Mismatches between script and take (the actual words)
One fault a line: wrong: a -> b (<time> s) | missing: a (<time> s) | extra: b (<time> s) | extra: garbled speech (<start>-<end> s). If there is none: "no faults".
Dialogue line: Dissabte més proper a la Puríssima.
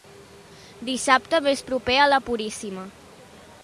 no faults